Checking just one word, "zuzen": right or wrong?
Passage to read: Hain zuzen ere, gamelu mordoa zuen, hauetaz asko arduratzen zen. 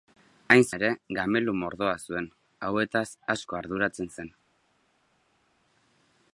wrong